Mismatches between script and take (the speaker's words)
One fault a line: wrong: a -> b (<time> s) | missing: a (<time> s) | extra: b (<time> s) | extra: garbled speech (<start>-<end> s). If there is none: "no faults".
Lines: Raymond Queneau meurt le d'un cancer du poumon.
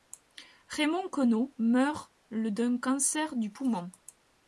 no faults